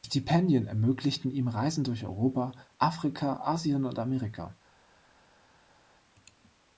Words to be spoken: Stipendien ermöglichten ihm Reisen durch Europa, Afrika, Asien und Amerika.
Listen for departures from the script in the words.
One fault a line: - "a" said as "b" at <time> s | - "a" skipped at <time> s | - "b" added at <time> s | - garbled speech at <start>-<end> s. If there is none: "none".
none